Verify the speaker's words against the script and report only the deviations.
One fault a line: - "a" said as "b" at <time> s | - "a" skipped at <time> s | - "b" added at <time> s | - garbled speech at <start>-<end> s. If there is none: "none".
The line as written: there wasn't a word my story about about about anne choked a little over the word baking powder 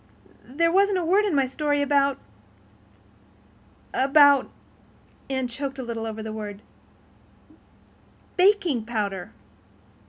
- "in" added at 1.2 s
- "about" skipped at 4.5 s